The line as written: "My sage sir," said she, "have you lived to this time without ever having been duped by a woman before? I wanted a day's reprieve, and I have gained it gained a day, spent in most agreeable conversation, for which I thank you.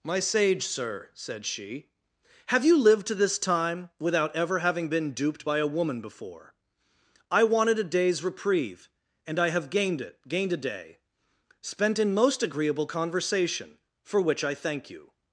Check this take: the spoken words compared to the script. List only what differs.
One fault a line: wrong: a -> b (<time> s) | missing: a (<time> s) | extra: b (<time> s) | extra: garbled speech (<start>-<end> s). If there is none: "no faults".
no faults